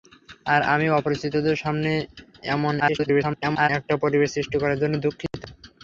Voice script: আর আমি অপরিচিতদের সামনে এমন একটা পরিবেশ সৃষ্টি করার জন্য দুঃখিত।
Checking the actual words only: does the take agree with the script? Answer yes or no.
no